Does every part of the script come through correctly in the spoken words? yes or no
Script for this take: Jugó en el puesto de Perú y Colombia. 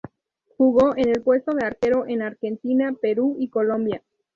no